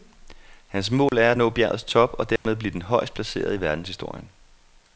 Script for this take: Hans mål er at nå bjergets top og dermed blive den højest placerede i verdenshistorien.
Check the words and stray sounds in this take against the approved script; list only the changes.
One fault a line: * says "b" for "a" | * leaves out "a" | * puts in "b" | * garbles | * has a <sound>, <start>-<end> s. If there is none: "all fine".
* has a dropout, 1.1-1.1 s
* has a dropout, 2.4-2.5 s